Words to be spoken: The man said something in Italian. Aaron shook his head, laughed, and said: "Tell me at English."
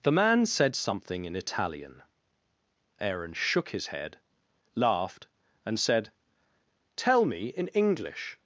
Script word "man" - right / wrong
right